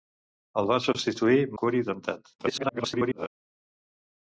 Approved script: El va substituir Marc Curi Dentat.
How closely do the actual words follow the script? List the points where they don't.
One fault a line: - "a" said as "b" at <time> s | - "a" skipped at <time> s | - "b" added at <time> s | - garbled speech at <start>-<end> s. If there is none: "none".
- "Marc" skipped at 1.4 s
- garbled speech at 2.4-3.3 s